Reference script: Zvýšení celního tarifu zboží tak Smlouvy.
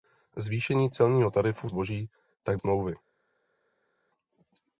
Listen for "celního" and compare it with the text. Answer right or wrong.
right